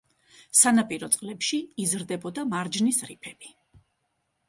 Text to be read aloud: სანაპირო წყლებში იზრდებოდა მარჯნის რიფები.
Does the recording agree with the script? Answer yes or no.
yes